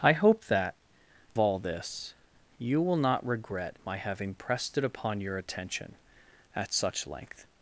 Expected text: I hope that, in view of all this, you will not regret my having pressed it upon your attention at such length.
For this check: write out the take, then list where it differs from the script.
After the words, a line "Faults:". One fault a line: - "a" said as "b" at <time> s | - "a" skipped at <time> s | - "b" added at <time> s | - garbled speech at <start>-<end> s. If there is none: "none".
I hope that, all this, you will not regret my having pressed it upon your attention at such length.
Faults:
- "in view of" skipped at 0.8 s